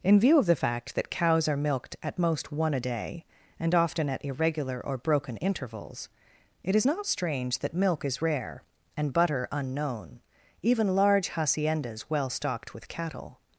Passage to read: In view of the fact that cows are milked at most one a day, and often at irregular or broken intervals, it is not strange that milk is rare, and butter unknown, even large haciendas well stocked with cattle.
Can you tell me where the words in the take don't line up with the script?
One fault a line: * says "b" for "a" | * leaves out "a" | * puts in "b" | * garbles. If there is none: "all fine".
all fine